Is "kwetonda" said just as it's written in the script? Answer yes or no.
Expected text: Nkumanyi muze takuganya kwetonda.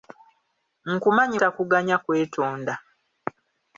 yes